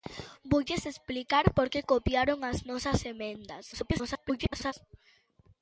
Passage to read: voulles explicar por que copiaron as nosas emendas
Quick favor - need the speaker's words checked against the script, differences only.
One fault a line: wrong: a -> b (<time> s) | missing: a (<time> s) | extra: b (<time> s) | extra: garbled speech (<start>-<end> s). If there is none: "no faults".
extra: garbled speech (3.7-4.7 s)